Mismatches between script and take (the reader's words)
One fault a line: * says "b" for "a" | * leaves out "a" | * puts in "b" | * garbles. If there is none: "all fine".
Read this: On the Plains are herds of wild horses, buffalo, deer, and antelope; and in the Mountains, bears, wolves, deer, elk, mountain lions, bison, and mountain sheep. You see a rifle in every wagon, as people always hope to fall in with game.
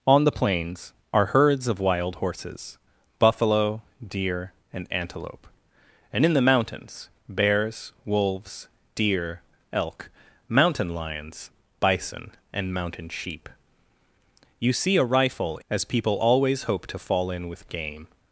* leaves out "in every wagon"